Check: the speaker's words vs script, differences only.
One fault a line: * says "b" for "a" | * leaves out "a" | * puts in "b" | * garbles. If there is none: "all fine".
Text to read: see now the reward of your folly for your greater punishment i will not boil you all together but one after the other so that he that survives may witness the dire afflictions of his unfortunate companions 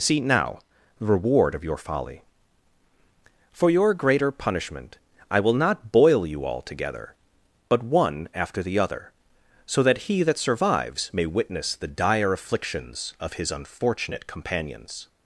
all fine